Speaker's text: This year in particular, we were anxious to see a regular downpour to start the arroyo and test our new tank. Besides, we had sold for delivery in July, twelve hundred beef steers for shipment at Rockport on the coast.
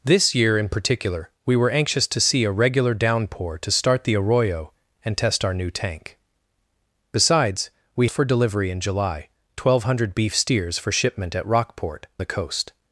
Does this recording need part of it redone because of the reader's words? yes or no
yes